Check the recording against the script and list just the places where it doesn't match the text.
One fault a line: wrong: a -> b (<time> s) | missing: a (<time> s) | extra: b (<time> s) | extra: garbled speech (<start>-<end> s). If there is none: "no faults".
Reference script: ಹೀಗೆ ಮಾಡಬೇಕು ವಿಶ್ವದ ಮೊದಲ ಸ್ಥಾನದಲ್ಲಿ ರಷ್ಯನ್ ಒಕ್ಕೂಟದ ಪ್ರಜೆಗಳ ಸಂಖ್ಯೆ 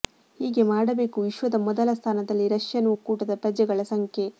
no faults